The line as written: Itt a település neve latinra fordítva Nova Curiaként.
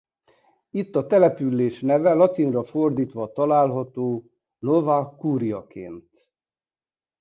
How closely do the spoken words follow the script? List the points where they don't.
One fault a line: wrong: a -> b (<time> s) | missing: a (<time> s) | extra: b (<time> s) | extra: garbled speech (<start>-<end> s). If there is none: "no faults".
extra: található (3.3 s)